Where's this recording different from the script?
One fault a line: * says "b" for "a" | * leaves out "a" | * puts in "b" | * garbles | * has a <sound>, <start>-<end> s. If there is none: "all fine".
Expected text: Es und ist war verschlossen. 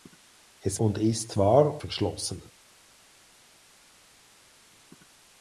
all fine